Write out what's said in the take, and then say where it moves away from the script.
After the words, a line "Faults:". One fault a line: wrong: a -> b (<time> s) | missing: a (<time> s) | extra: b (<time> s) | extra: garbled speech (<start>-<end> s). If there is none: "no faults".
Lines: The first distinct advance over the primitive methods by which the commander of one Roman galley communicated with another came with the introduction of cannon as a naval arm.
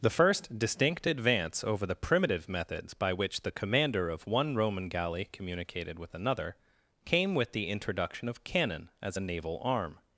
The first distinct advance over the primitive methods by which the commander of one Roman galley communicated with another came with the introduction of cannon as a naval arm.
Faults:
no faults